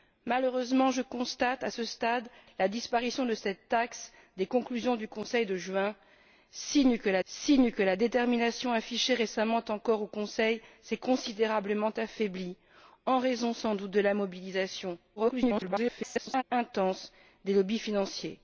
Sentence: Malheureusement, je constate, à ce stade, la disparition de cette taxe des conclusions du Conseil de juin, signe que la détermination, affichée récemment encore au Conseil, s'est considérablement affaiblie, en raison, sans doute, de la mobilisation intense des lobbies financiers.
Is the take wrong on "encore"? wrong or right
right